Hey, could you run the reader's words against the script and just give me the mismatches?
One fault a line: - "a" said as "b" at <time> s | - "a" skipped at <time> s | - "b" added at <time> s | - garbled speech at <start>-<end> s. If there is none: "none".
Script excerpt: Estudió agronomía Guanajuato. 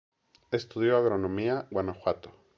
none